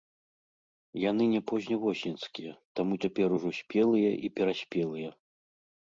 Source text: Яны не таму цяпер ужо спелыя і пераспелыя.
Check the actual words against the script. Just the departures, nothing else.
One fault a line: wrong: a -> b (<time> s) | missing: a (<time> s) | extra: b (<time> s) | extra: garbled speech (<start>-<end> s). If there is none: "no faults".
extra: позневосеньскія (1.5 s)